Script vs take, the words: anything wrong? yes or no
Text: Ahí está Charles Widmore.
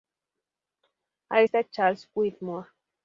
no